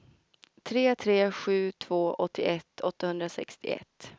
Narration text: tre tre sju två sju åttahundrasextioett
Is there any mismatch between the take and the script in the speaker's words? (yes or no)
yes